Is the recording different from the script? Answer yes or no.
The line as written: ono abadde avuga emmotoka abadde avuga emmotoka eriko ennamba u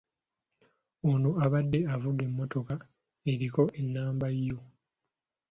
yes